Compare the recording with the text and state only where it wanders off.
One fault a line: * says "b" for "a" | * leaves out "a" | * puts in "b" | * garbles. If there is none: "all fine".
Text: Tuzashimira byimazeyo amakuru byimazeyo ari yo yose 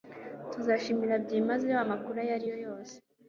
* says "ayo" for "byimazeyo"